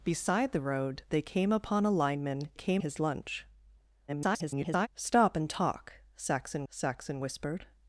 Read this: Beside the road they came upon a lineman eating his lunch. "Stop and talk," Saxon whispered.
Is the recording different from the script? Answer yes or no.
yes